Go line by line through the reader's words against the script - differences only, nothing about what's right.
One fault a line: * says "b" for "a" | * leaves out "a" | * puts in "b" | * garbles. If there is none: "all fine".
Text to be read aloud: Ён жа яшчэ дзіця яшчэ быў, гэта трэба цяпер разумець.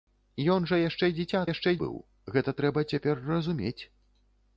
all fine